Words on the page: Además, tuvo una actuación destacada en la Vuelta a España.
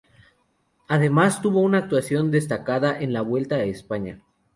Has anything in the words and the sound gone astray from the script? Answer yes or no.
no